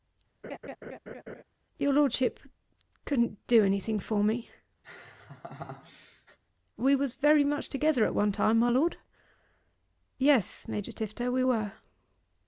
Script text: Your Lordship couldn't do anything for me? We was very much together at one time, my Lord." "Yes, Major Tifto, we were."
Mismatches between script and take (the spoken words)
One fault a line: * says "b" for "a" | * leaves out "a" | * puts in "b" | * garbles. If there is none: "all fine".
all fine